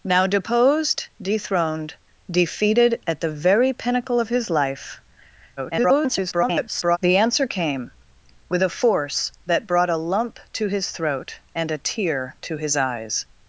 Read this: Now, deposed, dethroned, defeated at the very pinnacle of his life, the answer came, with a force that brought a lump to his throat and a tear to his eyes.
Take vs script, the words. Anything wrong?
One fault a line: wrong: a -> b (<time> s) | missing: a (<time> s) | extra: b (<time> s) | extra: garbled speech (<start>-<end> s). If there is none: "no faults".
extra: garbled speech (5.6-7.0 s)